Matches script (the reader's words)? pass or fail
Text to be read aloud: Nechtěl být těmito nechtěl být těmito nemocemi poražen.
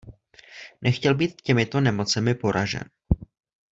fail